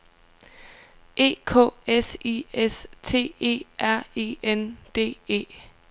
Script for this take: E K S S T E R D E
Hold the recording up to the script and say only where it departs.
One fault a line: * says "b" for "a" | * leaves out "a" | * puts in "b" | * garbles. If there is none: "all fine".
* puts in "I"
* puts in "E N"